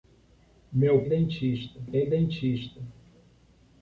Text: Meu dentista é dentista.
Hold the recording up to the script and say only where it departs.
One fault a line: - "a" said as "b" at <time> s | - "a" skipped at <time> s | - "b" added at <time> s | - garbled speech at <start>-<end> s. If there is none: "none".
none